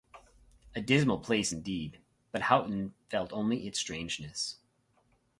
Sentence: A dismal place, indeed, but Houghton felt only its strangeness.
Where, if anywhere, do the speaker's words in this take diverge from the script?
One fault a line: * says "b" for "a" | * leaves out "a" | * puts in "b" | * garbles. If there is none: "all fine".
all fine